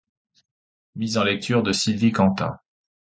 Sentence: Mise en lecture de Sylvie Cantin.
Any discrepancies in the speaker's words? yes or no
no